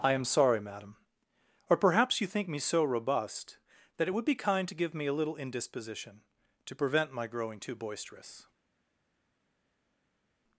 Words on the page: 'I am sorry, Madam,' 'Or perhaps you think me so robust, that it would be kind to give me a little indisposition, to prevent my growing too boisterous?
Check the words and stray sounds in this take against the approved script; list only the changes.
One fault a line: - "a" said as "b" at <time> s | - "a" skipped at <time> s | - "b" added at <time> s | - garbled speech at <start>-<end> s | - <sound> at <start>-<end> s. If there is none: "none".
none